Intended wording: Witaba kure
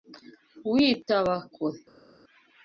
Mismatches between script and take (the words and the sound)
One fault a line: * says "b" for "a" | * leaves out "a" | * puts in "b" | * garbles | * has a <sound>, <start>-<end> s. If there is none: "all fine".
all fine